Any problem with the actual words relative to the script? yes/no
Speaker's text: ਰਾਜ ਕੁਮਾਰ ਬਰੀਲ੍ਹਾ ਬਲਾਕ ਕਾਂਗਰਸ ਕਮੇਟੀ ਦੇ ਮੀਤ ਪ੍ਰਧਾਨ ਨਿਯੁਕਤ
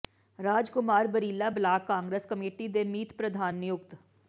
no